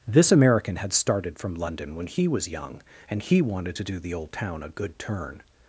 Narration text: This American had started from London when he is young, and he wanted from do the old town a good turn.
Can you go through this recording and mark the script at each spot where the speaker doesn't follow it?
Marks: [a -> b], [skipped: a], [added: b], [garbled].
This American had started from London when he [is -> was] young, and he wanted [from -> to] do the old town a good turn.